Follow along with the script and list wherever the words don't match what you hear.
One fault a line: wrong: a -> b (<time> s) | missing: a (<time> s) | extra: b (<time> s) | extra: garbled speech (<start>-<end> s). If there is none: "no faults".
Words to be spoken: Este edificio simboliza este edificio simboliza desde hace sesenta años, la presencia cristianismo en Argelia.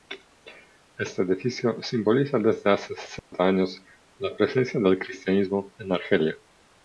missing: este edificio simboliza (2.4 s)
extra: del (4.8 s)